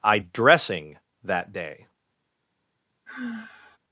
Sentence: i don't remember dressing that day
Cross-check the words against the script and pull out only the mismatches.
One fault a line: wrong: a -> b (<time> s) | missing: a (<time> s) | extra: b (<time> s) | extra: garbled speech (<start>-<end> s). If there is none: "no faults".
missing: don't remember (0.2 s)